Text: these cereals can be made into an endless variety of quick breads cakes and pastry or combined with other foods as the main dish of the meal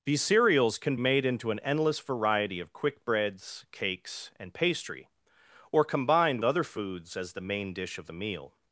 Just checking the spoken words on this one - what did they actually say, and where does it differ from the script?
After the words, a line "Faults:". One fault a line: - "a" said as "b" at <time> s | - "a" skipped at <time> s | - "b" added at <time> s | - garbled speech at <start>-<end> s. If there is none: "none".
these cereals can made into an endless variety of quick breads cakes and pastry or combined other foods as the main dish of the meal
Faults:
- "be" skipped at 0.9 s
- "with" skipped at 6.4 s